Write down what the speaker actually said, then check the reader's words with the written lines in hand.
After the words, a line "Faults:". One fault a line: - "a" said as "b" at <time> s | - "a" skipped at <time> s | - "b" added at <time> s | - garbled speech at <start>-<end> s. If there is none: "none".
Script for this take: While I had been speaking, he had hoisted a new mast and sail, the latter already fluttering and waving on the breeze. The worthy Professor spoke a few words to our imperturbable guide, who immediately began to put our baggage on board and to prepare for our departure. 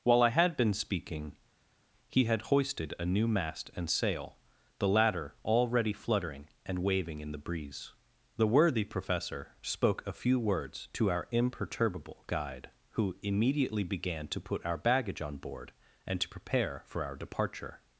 While I had been speaking, he had hoisted a new mast and sail, the latter already fluttering and waving in the breeze. The worthy Professor spoke a few words to our imperturbable guide, who immediately began to put our baggage on board and to prepare for our departure.
Faults:
- "on" said as "in" at 7.2 s